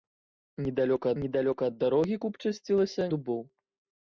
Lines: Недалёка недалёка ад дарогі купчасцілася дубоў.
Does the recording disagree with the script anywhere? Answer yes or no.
no